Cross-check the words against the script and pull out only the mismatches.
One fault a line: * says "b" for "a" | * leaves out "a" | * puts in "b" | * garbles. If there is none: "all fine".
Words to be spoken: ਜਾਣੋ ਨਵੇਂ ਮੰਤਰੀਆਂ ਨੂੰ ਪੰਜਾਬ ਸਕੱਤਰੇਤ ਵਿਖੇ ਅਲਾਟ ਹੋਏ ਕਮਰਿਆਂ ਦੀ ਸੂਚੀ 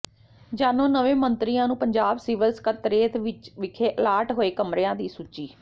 * puts in "ਸਿਵਲ"